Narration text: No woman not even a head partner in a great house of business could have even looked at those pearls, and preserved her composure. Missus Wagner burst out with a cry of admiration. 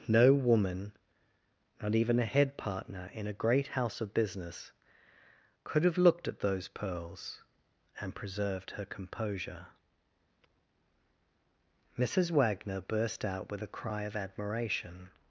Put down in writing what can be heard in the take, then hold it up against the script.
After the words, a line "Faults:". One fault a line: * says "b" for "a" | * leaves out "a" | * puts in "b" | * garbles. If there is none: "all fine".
No woman not even a head partner in a great house of business could have looked at those pearls, and preserved her composure. Missus Wagner burst out with a cry of admiration.
Faults:
* leaves out "even"